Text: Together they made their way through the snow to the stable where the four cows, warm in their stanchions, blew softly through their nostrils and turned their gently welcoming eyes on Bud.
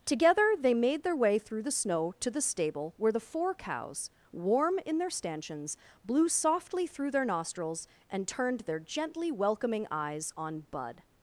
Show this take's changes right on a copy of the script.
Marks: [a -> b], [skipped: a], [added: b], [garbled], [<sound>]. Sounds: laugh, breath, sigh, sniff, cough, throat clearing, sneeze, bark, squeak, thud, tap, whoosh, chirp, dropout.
Together they made their way through the snow to the stable where the four cows, warm in their stanchions, blew softly through their nostrils and turned their gently welcoming eyes on Bud.